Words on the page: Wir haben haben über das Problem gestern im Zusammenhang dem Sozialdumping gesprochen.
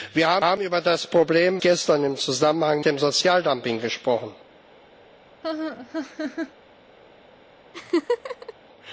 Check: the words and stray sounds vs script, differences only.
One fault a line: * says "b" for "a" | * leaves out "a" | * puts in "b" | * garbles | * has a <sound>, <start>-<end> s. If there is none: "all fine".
* has a laugh, 5.4-6.5 s
* has a laugh, 7.7-8.5 s